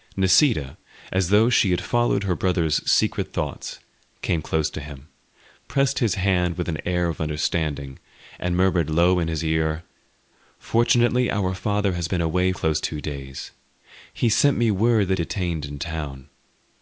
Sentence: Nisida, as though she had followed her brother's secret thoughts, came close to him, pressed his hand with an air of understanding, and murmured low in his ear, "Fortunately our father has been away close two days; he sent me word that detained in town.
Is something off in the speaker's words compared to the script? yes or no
no